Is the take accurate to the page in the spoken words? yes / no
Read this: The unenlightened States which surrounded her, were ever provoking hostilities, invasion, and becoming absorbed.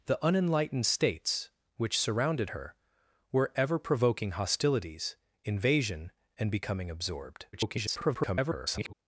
no